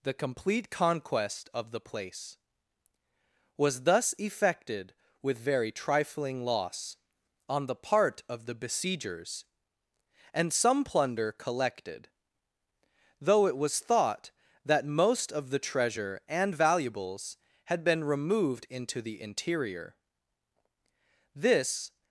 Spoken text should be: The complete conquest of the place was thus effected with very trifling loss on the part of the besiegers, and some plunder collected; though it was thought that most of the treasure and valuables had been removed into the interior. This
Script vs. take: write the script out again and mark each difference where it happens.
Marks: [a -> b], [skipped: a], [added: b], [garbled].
The complete conquest of the place was thus effected with very trifling loss on the part of the besiegers, and some plunder collected; though it was thought that most of the treasure and valuables had been removed into the interior. This